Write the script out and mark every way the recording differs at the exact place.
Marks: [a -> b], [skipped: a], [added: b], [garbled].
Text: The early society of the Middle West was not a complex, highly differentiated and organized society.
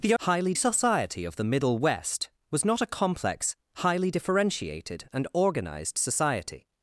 The [early -> highly] society of the Middle West was not a complex, highly differentiated and organized society.